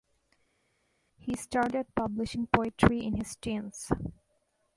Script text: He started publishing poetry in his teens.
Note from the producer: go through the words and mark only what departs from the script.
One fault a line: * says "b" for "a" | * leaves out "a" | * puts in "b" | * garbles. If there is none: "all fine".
all fine